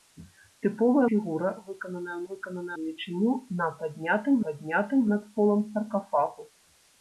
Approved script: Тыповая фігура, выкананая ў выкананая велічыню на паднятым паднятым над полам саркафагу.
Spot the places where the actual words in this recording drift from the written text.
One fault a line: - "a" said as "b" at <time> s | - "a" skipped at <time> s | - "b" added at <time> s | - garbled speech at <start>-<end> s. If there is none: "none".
none